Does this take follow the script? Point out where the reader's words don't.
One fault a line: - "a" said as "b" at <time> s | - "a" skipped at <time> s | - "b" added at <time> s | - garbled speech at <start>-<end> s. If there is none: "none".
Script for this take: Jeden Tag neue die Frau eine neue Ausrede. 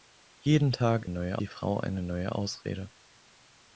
none